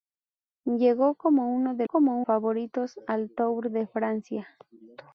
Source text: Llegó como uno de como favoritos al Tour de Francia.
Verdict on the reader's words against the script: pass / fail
pass